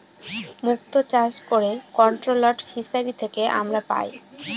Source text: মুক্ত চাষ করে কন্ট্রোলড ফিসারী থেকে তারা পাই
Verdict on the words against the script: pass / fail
fail